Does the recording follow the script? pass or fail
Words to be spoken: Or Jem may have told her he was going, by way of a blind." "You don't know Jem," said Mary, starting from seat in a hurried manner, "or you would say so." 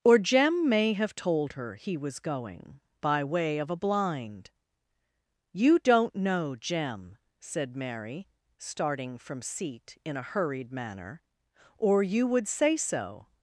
pass